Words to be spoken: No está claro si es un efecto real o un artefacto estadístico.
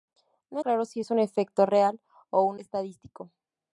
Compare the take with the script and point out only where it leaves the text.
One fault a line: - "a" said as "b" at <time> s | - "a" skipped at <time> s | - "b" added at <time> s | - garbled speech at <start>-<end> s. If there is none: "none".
- "está" skipped at 0.6 s
- "artefacto" skipped at 2.6 s